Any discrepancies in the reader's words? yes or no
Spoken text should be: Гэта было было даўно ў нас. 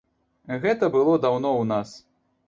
yes